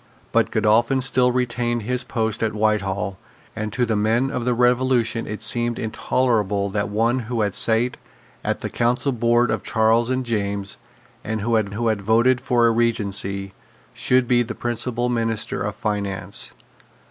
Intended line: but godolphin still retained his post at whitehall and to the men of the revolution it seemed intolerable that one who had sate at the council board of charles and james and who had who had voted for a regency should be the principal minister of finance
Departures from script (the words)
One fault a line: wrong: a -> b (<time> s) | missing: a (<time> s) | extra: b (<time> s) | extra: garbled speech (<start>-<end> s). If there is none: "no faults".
no faults